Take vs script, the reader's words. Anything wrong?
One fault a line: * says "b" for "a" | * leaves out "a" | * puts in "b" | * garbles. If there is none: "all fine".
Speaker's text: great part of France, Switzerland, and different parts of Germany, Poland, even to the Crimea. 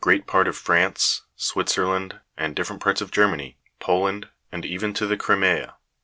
* puts in "and"